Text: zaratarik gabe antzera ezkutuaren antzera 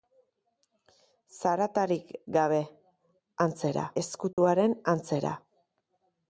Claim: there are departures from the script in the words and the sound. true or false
true